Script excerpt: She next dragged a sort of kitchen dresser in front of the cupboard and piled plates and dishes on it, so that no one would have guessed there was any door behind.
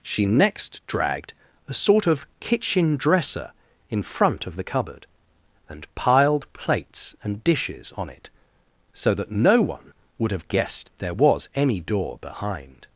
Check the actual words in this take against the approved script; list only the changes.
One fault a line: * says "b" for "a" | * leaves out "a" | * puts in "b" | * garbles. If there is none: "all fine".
all fine